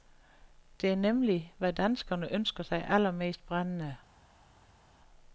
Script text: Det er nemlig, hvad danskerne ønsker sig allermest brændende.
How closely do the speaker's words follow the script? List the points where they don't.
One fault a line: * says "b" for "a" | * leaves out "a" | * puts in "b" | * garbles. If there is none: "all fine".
all fine